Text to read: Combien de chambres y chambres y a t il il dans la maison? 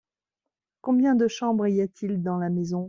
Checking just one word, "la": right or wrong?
right